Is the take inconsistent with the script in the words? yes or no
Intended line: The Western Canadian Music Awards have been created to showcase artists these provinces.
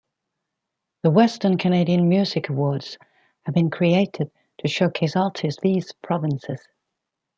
no